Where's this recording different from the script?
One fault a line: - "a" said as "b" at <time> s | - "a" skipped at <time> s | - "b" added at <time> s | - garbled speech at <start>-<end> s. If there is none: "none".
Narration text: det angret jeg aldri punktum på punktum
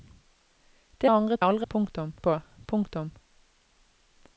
none